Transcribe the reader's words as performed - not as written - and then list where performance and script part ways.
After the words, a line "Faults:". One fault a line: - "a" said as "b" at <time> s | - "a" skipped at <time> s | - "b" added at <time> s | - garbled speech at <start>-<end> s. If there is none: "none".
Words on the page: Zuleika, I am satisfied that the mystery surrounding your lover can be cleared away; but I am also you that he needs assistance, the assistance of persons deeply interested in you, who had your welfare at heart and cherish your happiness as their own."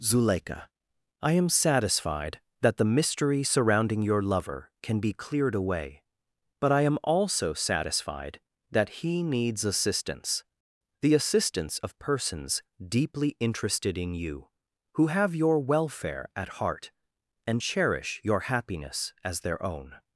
Zuleika, I am satisfied that the mystery surrounding your lover can be cleared away; but I am also satisfied that he needs assistance, the assistance of persons deeply interested in you, who have your welfare at heart and cherish your happiness as their own."
Faults:
- "you" said as "satisfied" at 7.5 s
- "had" said as "have" at 15.1 s